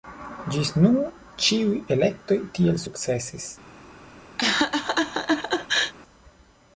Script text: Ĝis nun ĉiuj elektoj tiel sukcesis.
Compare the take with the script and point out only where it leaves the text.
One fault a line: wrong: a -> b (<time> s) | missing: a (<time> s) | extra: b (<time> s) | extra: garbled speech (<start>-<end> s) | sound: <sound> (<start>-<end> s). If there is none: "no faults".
sound: laugh (4.4-5.9 s)